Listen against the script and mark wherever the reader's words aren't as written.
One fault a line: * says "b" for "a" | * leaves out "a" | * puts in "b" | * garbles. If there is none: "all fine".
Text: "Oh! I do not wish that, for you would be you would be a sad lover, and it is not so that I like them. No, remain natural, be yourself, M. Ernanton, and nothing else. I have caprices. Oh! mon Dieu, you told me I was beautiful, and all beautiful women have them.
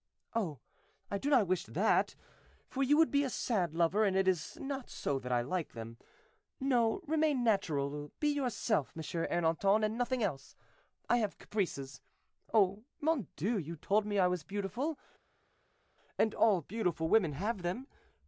* leaves out "you would be"